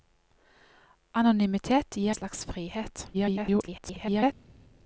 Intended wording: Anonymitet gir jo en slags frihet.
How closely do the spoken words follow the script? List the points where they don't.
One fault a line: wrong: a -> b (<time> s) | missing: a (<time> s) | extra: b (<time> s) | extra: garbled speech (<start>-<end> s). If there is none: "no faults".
missing: jo en (2.1 s)
extra: garbled speech (3.1-4.3 s)